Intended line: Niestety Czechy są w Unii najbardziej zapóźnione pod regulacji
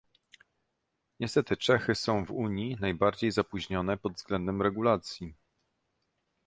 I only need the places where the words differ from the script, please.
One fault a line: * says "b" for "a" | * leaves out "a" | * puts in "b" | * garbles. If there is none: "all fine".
* puts in "względem"